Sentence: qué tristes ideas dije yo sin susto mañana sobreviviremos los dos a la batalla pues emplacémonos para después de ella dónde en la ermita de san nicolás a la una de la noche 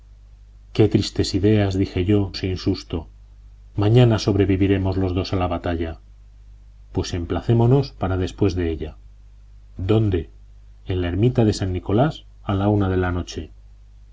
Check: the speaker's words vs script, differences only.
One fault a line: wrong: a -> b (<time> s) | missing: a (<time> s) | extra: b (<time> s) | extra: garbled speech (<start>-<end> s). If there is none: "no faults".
no faults